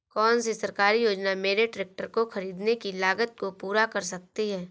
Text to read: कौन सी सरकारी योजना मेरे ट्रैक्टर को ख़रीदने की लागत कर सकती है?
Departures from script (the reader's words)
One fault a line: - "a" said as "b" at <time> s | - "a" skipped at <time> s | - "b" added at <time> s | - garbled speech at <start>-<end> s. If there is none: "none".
- "को पूरा" added at 3.4 s